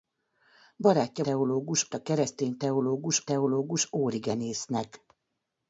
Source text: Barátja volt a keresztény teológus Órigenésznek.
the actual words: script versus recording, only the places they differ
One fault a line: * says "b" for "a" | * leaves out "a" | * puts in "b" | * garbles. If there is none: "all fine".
* says "teológus" for "volt"
* puts in "teológus"